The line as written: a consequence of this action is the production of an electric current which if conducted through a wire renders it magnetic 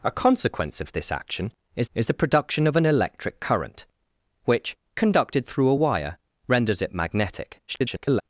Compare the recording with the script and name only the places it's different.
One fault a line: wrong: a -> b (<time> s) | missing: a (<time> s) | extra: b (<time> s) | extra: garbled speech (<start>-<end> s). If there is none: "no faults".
extra: is (1.9 s)
missing: if (4.8 s)
extra: garbled speech (7.7-8.2 s)